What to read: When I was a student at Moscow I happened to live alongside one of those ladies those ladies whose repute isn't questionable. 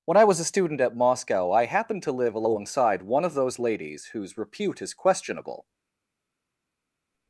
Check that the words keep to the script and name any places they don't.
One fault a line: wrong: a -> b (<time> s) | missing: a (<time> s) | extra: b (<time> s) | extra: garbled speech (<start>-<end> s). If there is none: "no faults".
missing: those ladies (4.0 s)
wrong: isn't -> is (4.8 s)